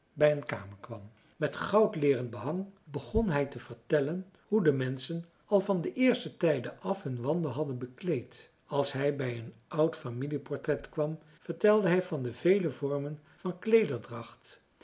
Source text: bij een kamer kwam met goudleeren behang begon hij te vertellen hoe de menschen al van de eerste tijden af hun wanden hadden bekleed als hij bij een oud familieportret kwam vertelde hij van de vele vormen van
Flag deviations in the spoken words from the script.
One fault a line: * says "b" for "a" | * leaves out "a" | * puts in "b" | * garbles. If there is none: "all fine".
all fine